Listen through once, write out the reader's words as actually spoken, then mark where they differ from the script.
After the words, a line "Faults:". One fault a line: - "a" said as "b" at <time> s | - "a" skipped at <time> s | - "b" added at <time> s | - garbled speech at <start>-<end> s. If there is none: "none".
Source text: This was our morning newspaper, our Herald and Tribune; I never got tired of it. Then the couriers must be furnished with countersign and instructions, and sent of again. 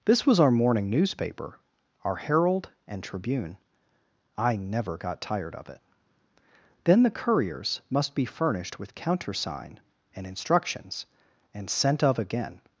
This was our morning newspaper, our Herald and Tribune; I never got tired of it. Then the couriers must be furnished with countersign and instructions, and sent of again.
Faults:
none